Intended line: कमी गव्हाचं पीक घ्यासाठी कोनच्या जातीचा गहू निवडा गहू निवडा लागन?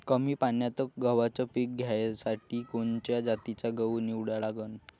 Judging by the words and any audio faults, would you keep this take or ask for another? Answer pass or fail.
fail